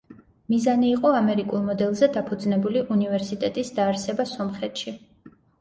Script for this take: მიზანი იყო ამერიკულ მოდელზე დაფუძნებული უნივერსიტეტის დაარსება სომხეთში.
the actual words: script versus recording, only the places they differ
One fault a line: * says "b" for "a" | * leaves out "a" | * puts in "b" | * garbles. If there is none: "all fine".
all fine